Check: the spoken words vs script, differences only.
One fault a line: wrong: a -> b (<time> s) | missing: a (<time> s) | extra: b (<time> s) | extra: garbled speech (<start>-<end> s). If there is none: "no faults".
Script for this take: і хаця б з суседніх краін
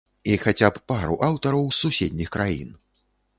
extra: пару аўтараў (0.9 s)